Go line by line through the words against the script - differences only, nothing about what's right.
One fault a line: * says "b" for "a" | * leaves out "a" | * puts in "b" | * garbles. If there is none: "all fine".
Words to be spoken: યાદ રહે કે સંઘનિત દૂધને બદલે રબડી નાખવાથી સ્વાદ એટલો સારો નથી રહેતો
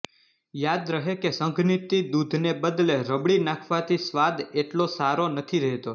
all fine